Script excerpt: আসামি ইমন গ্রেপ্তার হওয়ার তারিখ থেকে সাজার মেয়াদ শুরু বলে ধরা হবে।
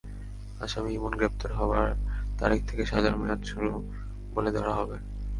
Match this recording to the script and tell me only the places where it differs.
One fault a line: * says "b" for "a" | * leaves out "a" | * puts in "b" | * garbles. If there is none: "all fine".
all fine